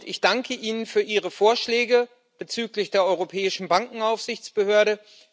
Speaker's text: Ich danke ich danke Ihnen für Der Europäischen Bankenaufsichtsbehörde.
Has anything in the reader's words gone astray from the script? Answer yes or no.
yes